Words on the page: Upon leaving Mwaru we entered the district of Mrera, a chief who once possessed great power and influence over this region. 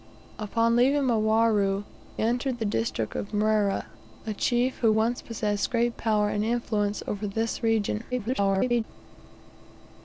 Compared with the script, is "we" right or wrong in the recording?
wrong